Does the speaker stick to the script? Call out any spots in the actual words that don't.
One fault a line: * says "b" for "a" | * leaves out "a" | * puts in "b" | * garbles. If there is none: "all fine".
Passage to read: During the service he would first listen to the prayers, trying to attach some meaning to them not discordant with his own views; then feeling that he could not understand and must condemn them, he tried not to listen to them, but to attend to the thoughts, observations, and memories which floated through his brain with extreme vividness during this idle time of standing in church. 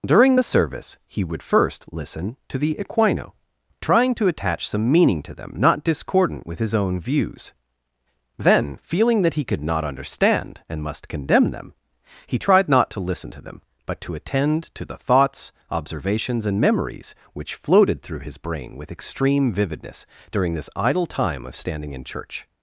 * says "equino" for "prayers"